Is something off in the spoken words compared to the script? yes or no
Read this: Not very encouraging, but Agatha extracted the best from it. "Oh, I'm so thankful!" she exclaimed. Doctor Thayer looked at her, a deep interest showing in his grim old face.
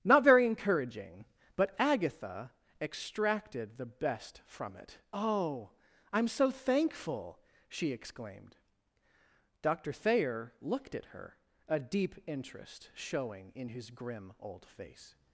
no